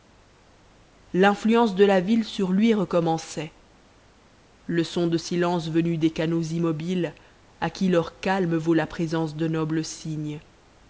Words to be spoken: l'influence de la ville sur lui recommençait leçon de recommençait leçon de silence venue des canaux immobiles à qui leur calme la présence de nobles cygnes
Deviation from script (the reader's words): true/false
true